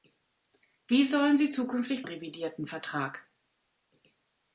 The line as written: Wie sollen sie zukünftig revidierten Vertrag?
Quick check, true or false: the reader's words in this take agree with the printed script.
true